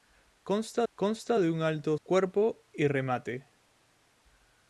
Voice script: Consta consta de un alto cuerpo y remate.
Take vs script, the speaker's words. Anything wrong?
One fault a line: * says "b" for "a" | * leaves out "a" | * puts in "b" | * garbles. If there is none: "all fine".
all fine